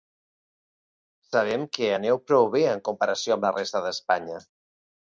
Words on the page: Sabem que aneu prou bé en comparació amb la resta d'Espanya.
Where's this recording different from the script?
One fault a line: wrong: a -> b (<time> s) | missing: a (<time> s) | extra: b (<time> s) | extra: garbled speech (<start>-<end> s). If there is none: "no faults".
no faults